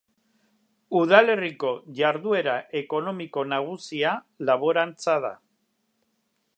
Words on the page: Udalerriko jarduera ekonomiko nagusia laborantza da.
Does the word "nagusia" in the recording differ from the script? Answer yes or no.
no